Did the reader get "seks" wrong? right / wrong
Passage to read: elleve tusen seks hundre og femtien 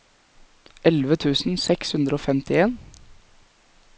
right